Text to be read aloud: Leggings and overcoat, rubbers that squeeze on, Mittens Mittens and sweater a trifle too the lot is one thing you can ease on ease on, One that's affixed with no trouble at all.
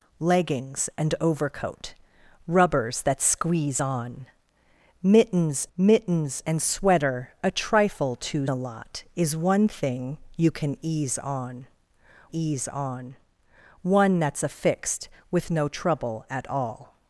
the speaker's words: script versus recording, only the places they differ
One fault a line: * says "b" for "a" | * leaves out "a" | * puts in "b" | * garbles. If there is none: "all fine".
all fine